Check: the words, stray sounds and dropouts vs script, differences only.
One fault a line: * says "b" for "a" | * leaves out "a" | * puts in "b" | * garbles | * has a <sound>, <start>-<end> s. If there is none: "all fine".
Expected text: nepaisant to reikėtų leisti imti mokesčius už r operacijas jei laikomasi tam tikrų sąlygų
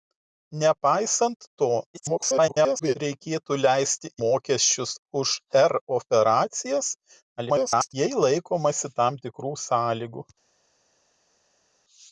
* garbles
* leaves out "imti"
* garbles